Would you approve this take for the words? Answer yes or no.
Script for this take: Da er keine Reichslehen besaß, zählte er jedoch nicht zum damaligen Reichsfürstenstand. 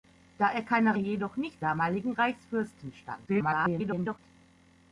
no